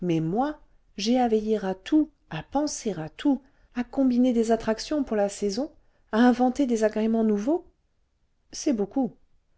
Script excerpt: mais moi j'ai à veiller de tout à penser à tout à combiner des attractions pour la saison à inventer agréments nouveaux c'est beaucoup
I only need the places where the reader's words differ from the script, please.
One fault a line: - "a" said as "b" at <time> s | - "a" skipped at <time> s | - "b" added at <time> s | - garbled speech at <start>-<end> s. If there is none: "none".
- "de" said as "à" at 1.6 s
- "des" added at 6.7 s